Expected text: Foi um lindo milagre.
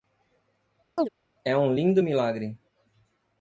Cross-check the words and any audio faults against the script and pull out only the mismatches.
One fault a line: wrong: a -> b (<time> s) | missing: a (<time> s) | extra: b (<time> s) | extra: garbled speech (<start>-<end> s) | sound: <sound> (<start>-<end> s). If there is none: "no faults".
sound: chirp (1.0-1.1 s)
wrong: Foi -> É (1.4 s)